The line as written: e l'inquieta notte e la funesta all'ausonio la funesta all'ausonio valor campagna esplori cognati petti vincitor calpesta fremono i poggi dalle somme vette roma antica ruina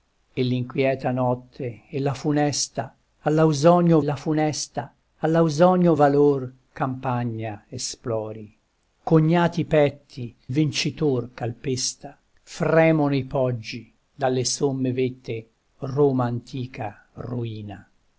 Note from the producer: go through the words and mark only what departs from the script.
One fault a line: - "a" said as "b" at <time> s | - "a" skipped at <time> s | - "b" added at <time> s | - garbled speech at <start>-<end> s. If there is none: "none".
none